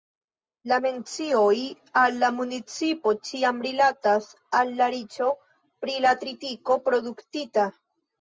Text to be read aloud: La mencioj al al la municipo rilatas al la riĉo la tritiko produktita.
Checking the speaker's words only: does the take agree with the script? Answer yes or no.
no